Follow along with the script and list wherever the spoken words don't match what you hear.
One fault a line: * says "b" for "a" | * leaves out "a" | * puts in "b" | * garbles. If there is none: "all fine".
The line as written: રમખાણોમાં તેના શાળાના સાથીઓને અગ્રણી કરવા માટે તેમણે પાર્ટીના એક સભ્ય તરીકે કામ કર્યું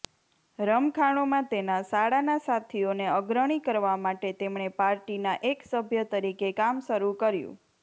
* puts in "શરૂ"